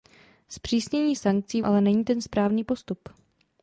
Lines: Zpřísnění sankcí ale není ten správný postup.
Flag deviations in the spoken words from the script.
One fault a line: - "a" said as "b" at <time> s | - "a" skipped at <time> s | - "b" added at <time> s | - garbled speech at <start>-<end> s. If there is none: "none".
none